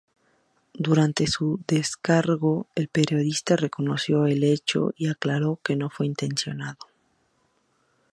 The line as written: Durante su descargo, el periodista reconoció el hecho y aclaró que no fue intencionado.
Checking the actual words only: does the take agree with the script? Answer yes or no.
yes